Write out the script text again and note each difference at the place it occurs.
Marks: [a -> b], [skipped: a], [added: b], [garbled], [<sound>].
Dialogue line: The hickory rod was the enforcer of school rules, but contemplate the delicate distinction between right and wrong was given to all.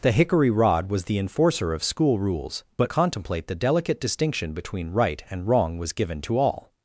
The hickory rod was the enforcer of school rules, but contemplate the delicate distinction between right and wrong was given to all.